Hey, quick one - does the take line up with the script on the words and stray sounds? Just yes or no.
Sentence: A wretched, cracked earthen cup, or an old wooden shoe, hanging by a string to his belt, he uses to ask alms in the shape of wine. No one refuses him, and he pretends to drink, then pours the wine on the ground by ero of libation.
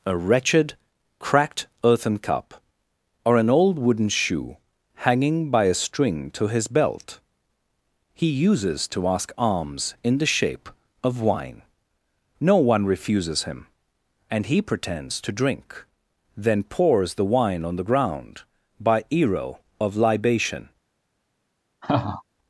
no